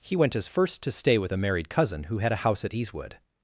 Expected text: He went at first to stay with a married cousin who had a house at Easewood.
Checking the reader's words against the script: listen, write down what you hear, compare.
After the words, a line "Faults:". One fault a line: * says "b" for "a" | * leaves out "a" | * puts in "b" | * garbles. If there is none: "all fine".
He went as first to stay with a married cousin who had a house at Easewood.
Faults:
* says "as" for "at"